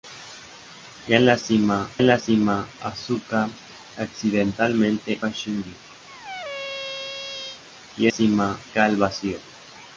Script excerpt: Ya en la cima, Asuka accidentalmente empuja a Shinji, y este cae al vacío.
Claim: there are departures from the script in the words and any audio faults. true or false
true